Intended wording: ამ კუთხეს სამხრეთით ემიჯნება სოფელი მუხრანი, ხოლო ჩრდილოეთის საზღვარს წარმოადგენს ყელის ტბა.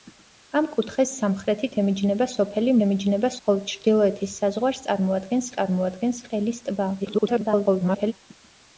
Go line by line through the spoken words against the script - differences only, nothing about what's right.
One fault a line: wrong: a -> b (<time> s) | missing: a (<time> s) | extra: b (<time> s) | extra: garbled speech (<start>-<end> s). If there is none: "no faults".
wrong: მუხრანი -> ემიჯნება (2.8 s)
extra: წარმოადგენს (5.6 s)
extra: garbled speech (7.0-8.1 s)